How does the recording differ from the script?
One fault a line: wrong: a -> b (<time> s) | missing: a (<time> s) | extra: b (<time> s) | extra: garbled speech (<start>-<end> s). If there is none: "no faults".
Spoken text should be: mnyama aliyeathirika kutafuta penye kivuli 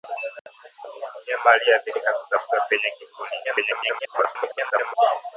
extra: garbled speech (3.4-4.9 s)